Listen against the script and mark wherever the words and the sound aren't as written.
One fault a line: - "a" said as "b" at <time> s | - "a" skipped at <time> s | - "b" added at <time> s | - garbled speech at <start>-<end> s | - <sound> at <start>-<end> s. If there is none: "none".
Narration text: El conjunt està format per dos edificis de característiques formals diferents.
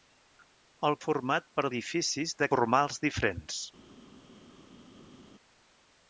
- "conjunt està" skipped at 0.9 s
- "dos" skipped at 1.6 s
- "característiques" skipped at 2.5 s